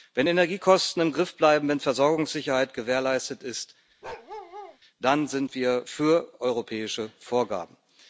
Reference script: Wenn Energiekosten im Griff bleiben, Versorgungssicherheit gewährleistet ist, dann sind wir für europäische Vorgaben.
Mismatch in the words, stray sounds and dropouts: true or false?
true